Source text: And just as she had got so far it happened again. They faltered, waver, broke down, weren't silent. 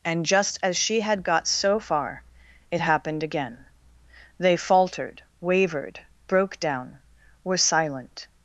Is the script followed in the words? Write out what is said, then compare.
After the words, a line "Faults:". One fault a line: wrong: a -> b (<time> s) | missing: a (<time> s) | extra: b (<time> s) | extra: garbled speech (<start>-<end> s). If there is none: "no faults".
And just as she had got so far it happened again. They faltered, wavered, broke down, were silent.
Faults:
wrong: waver -> wavered (5.4 s)
wrong: weren't -> were (7.4 s)